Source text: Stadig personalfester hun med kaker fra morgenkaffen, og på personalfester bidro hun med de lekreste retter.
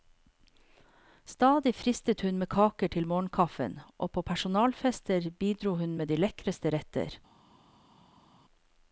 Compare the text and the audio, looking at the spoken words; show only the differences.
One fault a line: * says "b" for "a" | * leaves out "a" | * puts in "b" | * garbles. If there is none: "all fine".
* says "fristet" for "personalfester"
* says "til" for "fra"